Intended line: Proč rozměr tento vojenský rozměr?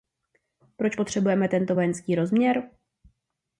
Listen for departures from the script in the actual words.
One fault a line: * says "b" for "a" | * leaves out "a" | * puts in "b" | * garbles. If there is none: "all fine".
* says "potřebujeme" for "rozměr"